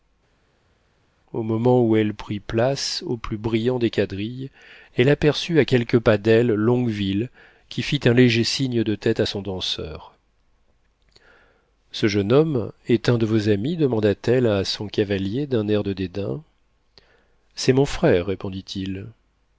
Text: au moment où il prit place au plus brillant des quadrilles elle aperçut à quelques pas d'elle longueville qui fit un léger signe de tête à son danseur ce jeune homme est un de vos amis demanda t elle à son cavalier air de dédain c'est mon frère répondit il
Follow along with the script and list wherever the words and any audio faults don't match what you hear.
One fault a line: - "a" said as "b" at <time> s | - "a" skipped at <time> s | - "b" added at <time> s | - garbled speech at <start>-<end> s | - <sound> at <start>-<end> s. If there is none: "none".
- "il" said as "elle" at 2.0 s
- "d'un" added at 15.5 s